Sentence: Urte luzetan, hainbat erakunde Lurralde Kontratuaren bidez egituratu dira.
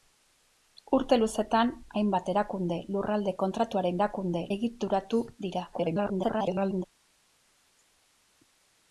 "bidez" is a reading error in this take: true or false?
true